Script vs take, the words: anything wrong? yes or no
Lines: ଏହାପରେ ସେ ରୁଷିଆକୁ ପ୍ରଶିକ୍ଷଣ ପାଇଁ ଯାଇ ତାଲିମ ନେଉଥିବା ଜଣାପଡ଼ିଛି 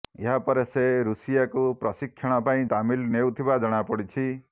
yes